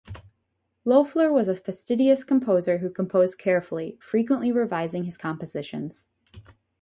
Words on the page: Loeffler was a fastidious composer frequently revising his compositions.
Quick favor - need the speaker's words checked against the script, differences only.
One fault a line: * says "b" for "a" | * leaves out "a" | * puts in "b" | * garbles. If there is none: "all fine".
* puts in "who composed carefully"